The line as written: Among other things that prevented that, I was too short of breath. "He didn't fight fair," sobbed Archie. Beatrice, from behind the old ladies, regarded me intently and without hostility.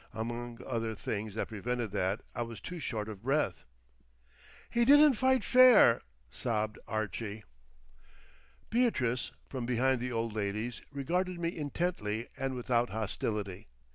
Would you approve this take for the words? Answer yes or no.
yes